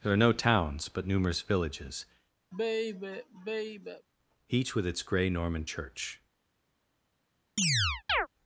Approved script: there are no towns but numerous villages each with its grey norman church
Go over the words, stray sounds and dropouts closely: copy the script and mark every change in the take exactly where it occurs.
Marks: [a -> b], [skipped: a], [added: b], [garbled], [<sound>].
there are no towns but numerous villages [sigh] each with its grey norman church [chirp]